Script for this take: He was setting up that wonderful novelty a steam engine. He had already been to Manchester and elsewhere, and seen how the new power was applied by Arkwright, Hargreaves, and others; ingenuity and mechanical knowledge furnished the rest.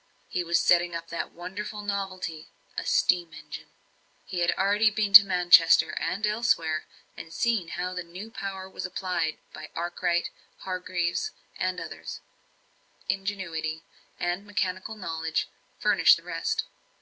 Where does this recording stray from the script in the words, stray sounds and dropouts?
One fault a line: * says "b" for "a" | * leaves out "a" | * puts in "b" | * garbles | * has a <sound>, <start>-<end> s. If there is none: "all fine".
all fine